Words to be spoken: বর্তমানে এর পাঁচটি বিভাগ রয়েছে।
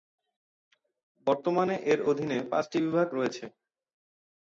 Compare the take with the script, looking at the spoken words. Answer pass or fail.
fail